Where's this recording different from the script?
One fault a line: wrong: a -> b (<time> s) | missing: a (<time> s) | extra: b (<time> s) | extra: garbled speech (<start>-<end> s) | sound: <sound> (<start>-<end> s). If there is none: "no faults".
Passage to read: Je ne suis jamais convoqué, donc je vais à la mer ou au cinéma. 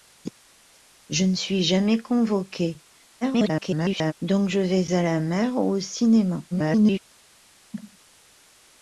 extra: garbled speech (3.2-4.1 s)
extra: garbled speech (6.5-7.0 s)
sound: cough (7.7-8.0 s)